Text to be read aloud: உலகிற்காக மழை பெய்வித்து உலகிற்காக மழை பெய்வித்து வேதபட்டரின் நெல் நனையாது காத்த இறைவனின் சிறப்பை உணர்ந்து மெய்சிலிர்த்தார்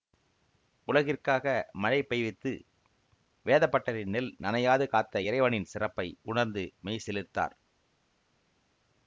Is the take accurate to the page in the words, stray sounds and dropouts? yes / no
no